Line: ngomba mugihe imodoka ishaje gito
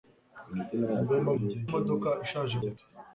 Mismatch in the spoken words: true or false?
false